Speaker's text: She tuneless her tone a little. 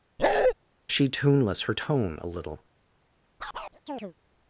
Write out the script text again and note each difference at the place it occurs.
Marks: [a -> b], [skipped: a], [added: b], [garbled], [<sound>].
[bark] She tuneless her tone a little. [chirp]